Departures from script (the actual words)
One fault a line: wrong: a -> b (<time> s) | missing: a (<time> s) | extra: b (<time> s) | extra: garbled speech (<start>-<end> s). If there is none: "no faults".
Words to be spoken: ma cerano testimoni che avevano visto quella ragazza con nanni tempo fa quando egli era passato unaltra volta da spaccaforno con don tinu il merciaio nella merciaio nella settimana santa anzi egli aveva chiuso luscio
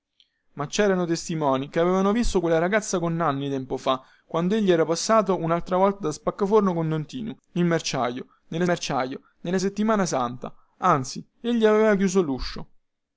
no faults